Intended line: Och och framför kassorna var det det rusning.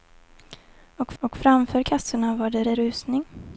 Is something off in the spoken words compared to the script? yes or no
no